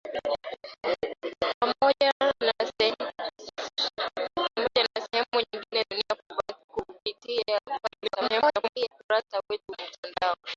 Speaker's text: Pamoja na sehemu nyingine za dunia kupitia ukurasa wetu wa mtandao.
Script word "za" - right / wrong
wrong